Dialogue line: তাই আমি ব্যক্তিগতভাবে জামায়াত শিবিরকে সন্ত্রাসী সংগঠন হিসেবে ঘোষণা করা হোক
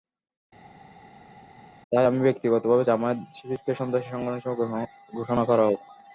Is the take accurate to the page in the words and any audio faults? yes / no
yes